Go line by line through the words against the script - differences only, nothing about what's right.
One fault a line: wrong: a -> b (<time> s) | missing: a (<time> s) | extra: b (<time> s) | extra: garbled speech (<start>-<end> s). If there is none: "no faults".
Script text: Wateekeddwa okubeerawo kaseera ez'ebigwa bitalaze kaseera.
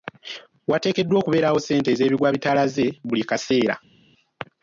wrong: kaseera -> ssente (1.6 s)
extra: buli (3.1 s)